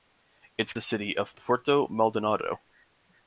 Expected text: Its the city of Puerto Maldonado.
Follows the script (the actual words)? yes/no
yes